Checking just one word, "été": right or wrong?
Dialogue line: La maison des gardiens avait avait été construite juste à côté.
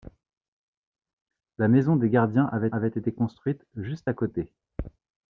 right